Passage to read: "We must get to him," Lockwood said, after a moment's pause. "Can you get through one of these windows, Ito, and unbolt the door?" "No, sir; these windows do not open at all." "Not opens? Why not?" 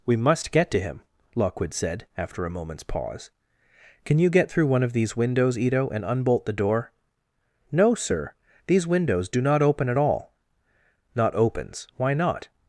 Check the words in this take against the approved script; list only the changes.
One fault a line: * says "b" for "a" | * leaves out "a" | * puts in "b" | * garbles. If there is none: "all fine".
all fine